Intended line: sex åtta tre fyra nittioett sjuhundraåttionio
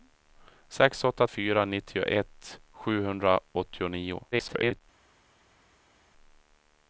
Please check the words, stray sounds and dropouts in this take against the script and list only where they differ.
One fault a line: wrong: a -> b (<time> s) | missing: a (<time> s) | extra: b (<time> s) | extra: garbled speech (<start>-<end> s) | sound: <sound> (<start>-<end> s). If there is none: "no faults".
missing: tre (1.3 s)
extra: garbled speech (4.3-4.8 s)